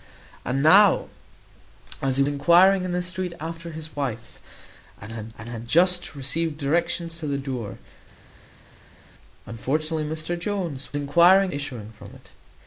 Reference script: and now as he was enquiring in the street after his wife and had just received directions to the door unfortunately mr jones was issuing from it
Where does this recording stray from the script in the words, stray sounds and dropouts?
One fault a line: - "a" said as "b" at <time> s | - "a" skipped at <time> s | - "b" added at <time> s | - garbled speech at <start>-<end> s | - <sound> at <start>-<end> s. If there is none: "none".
- "was" skipped at 2.2 s
- "and had" added at 5.4 s
- "was" said as "enquiring" at 10.9 s